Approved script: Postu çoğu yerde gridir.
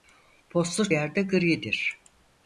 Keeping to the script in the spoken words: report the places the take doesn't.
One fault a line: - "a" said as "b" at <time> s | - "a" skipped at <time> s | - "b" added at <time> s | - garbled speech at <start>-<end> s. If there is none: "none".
- "çoğu" skipped at 0.9 s